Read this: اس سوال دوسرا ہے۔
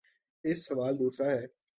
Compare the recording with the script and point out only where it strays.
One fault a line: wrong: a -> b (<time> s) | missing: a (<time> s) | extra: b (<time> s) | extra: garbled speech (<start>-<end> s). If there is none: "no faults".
no faults